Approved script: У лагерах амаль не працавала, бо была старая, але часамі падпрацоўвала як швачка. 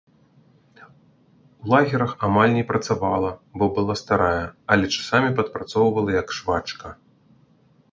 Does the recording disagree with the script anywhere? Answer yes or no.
no